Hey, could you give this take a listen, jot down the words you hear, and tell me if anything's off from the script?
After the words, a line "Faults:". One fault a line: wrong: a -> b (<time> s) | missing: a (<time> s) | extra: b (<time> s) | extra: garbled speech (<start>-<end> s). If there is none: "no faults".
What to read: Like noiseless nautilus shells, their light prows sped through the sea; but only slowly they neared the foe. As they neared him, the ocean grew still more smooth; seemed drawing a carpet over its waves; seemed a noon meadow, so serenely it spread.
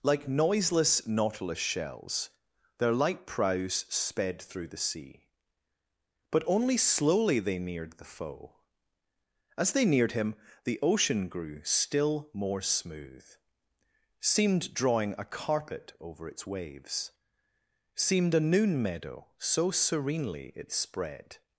Like noiseless nautilus shells, their light prows sped through the sea; but only slowly they neared the foe. As they neared him, the ocean grew still more smooth; seemed drawing a carpet over its waves; seemed a noon meadow, so serenely it spread.
Faults:
no faults